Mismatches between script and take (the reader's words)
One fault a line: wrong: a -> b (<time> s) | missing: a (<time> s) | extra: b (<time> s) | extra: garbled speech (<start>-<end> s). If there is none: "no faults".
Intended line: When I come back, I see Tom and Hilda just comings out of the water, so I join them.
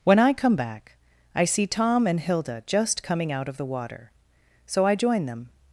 wrong: comings -> coming (3.0 s)